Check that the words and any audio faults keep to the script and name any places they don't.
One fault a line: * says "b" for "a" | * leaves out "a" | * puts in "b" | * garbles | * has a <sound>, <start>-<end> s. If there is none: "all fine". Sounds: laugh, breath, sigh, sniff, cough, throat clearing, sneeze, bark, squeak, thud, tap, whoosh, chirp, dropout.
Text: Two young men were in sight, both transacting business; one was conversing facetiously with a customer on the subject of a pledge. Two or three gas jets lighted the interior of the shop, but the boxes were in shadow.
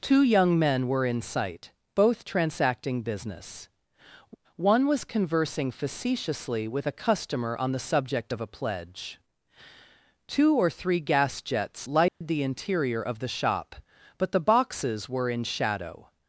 * has a dropout, 12.1-12.2 s